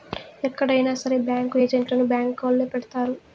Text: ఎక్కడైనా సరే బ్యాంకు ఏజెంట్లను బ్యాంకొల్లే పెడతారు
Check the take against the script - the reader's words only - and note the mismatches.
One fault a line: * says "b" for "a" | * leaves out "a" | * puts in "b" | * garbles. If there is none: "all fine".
all fine